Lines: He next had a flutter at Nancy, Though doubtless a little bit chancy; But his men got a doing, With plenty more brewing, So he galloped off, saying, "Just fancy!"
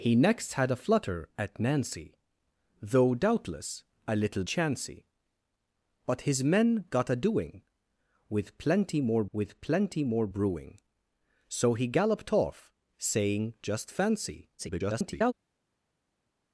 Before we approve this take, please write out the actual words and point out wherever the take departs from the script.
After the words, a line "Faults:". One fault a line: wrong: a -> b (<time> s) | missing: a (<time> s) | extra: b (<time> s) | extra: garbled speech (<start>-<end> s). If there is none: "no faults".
He next had a flutter at Nancy, Though doubtless a little chancy; But his men got a doing, With plenty more With plenty more brewing, So he galloped off, saying, "Just fancy!" [garbled]
Faults:
missing: bit (4.4 s)
extra: With plenty more (9.3 s)
extra: garbled speech (14.6-15.3 s)